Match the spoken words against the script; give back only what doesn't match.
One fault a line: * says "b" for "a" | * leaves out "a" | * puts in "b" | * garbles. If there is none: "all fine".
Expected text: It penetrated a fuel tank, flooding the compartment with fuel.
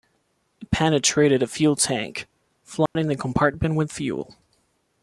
all fine